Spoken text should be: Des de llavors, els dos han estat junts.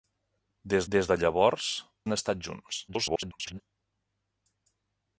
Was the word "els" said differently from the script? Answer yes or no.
yes